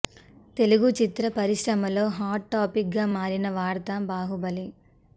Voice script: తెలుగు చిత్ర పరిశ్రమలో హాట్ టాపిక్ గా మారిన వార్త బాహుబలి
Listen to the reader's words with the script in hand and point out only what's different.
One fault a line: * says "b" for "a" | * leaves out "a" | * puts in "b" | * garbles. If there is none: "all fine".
all fine